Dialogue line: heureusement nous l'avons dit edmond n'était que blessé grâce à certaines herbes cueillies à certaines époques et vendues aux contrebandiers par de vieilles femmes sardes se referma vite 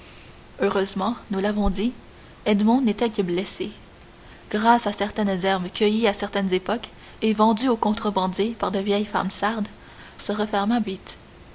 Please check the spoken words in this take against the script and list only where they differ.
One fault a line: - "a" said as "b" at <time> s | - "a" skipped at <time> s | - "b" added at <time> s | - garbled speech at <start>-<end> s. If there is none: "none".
none